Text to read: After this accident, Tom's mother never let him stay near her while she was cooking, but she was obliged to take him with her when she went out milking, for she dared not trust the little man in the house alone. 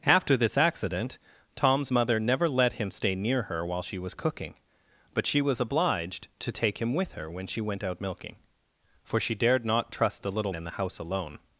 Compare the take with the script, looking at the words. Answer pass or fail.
fail